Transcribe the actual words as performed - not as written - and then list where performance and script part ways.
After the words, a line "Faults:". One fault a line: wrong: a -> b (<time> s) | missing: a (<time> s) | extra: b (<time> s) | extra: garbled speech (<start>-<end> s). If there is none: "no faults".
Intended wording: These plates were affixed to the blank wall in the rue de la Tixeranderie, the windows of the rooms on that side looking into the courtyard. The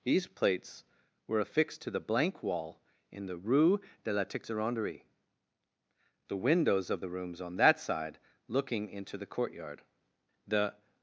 These plates were affixed to the blank wall in the rue de la Tixeranderie, the windows of the rooms on that side looking into the courtyard. The
Faults:
no faults